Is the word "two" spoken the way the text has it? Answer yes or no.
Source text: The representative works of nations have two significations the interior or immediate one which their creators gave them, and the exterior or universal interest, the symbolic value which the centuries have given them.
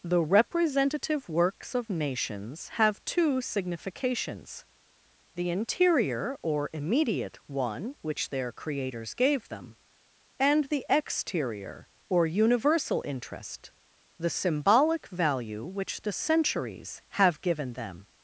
yes